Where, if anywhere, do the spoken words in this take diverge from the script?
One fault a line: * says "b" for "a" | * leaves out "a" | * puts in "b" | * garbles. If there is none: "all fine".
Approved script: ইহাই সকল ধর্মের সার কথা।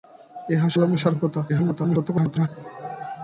* leaves out "সকল"
* garbles